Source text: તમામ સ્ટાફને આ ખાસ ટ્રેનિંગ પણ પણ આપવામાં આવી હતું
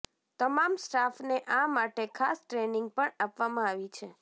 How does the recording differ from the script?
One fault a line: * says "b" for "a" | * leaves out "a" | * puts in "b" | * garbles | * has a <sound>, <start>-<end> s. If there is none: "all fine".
* puts in "માટે"
* leaves out "પણ"
* says "છે" for "હતું"